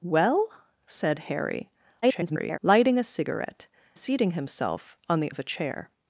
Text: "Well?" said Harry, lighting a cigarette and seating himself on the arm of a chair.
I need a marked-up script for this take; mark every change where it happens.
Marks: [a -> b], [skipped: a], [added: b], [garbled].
"Well?" said Harry, [garbled] lighting a cigarette [skipped: and] seating himself on the [skipped: arm] of a chair.